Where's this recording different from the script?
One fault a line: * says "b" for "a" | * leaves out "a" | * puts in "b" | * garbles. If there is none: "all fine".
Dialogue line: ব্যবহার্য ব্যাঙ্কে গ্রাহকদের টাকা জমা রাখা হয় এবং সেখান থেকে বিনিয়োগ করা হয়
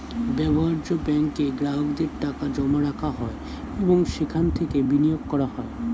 all fine